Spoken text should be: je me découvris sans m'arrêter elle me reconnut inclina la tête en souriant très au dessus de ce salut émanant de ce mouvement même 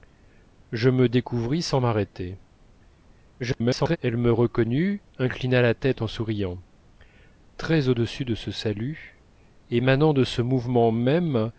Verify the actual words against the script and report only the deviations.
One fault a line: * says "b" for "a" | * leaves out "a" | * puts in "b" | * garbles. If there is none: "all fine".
* garbles